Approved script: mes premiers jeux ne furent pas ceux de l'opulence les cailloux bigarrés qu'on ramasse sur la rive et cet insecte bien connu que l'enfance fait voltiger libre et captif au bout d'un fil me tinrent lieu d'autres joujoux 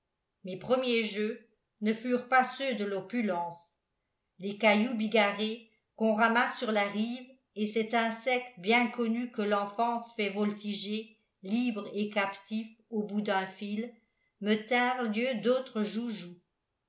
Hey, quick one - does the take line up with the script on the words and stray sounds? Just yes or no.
yes